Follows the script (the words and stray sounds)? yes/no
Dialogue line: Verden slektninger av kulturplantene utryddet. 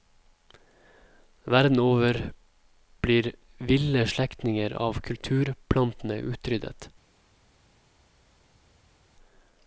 no